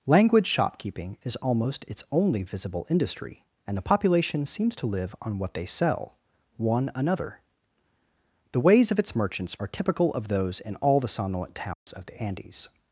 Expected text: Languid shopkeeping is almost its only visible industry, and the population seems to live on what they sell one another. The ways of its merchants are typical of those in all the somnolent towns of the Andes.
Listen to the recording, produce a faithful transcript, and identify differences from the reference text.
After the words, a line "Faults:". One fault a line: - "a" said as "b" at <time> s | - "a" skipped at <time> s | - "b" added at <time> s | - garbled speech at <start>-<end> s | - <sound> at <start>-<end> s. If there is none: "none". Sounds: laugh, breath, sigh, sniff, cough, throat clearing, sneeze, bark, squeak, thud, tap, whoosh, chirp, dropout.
Language shopkeeping is almost its only visible industry, and the population seems to live on what they sell one another. The ways of its merchants are typical of those in all the somnolent towns of the Andes.
Faults:
- "Languid" said as "Language" at 0.1 s
- dropout at 11.7-11.9 s